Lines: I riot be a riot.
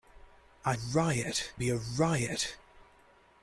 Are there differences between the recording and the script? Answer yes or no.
no